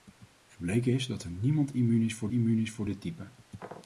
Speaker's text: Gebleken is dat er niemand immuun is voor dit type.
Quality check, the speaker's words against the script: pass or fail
fail